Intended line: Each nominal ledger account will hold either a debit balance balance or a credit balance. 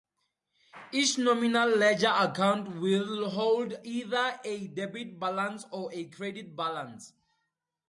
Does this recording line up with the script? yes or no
no